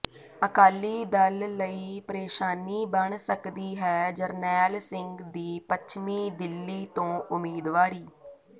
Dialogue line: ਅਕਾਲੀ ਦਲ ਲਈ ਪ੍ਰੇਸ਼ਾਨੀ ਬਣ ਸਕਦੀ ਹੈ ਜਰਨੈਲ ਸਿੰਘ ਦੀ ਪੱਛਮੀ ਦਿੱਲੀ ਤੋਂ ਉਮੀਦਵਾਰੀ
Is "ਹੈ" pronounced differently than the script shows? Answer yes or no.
no